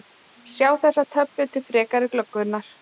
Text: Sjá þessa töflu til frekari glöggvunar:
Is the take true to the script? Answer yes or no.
yes